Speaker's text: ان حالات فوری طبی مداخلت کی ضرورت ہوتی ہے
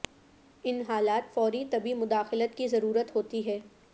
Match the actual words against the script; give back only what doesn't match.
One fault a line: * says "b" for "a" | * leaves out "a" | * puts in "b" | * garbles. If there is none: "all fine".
all fine